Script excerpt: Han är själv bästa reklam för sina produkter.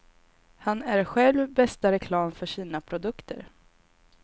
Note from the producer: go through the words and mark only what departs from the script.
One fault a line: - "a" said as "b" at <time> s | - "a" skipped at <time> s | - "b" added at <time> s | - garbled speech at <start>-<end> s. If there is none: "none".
none